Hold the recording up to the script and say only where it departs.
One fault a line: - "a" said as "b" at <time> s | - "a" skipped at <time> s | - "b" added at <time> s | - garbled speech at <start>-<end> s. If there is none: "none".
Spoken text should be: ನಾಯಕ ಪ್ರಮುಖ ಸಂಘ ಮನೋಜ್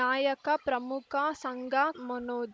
none